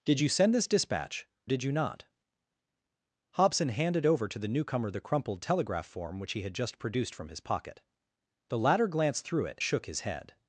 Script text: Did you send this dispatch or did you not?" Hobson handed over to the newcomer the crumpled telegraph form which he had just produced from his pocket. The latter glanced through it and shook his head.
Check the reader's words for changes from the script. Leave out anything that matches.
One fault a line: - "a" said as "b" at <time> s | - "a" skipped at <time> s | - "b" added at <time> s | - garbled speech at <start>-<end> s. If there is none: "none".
- "or" skipped at 1.3 s
- "and" skipped at 9.6 s